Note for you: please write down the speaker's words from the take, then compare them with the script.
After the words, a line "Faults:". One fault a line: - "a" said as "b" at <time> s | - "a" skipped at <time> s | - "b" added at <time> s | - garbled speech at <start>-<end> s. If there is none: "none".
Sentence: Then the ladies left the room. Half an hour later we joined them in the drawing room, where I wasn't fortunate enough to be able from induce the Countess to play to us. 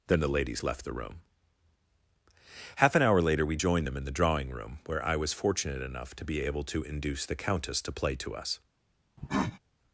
Then the ladies left the room. Half an hour later we joined them in the drawing room, where I was fortunate enough to be able to induce the Countess to play to us.
Faults:
- "wasn't" said as "was" at 5.2 s
- "from" said as "to" at 6.6 s